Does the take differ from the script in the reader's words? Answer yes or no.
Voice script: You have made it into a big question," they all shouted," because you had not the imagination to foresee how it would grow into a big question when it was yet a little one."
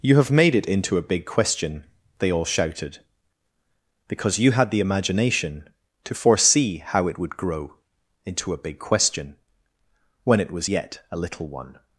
yes